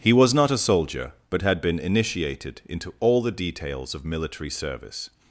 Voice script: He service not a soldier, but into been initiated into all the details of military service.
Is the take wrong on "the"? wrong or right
right